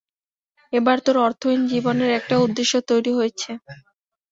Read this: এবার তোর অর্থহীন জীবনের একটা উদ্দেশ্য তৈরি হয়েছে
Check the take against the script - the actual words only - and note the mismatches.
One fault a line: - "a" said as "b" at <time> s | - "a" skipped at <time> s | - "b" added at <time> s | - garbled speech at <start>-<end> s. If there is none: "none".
none